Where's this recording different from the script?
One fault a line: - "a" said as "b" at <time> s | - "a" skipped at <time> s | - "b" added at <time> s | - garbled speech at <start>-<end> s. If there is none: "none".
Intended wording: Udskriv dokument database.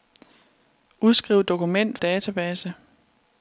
none